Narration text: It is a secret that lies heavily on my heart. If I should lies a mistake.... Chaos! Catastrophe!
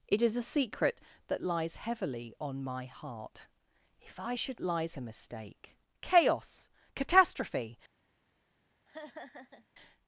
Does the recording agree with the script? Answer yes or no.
yes